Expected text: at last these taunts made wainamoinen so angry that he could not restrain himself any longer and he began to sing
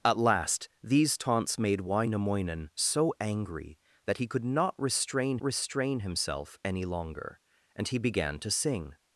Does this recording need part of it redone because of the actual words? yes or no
yes